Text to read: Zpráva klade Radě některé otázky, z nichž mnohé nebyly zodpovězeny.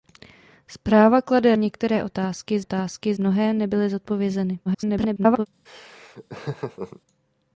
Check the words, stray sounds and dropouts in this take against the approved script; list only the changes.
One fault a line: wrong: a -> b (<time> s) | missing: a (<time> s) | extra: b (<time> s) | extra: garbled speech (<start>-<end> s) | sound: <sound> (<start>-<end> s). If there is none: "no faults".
missing: Radě (1.6 s)
wrong: nichž -> otázky (2.6 s)
extra: garbled speech (4.7-5.5 s)
sound: laugh (5.7-7.0 s)